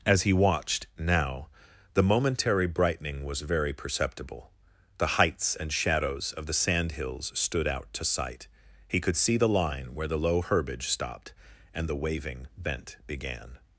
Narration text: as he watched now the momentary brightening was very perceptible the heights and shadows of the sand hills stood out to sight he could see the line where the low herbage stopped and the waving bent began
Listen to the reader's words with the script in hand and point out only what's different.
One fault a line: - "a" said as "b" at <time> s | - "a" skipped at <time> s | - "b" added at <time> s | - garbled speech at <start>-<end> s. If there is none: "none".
none